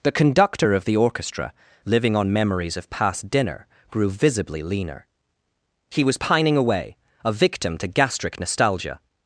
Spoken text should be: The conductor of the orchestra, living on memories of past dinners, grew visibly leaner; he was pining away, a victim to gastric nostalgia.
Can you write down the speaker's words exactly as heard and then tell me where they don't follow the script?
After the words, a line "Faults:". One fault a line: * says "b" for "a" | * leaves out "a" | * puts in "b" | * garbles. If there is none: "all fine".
The conductor of the orchestra, living on memories of past dinner, grew visibly leaner; he was pining away, a victim to gastric nostalgia.
Faults:
* says "dinner" for "dinners"